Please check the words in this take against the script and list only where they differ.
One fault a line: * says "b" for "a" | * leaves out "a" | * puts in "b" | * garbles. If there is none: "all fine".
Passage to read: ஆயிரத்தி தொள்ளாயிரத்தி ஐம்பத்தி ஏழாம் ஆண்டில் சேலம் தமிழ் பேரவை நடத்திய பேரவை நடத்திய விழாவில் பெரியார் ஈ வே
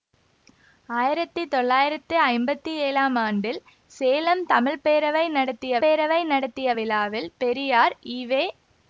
all fine